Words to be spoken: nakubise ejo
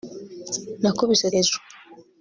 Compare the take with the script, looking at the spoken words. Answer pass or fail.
pass